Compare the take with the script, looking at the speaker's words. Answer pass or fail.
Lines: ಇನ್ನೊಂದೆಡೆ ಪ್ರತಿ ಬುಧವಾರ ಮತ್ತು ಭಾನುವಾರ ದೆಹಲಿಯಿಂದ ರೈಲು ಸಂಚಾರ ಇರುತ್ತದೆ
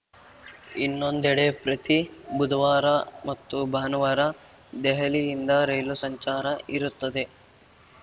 pass